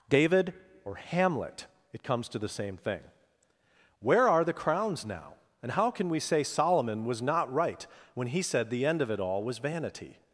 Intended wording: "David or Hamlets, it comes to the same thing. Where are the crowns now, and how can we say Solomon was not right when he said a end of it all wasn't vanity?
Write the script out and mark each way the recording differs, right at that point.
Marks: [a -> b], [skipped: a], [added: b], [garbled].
"David or [Hamlets, -> Hamlet] it comes to the same thing. Where are the crowns now, and how can we say Solomon was not right when he said [a -> the] end of it all [wasn't -> was] vanity?